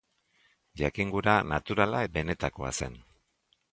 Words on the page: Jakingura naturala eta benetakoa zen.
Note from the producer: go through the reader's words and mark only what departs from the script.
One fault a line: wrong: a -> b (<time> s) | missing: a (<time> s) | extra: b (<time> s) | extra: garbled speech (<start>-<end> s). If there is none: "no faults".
missing: eta (2.0 s)